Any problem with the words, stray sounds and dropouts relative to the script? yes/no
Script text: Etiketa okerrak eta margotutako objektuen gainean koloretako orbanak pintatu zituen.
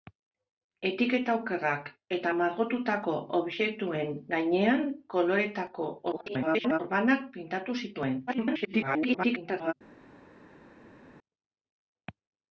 yes